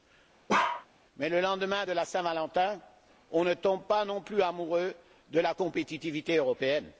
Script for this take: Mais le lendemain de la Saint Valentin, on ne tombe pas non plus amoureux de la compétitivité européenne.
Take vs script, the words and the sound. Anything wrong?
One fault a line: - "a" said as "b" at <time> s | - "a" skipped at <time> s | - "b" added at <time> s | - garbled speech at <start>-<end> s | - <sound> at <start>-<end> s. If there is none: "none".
- bark at 0.5-0.9 s